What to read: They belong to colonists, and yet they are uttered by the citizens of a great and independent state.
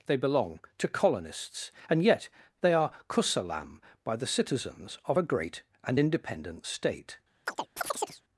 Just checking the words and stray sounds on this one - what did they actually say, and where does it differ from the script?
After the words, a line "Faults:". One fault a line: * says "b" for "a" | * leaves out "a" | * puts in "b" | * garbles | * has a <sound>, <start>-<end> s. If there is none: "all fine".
They belong to colonists, and yet they are kusalam by the citizens of a great and independent state.
Faults:
* says "kusalam" for "uttered"
* has a chirp, 7.5-8.2 s